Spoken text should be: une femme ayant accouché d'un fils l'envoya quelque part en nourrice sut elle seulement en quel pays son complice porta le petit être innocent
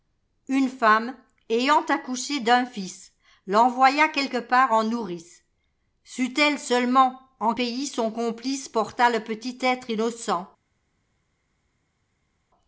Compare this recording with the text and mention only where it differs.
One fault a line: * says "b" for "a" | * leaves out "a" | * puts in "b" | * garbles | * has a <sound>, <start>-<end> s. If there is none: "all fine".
* leaves out "quel"